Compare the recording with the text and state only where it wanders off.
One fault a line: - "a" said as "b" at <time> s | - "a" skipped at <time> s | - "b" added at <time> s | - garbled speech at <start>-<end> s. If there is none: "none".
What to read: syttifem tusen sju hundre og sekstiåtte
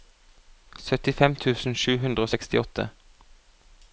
none